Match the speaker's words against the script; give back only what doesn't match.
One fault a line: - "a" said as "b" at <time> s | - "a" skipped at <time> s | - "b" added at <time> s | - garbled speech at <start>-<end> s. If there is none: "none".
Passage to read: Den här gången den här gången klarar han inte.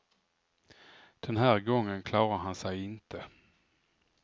- "den här gången" skipped at 2.0 s
- "sig" added at 2.5 s